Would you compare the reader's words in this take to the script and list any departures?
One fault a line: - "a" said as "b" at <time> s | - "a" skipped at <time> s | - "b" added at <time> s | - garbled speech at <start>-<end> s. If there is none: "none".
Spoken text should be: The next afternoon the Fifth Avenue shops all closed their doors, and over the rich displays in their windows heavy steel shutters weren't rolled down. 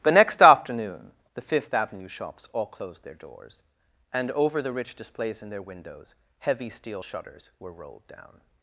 - "weren't" said as "were" at 7.6 s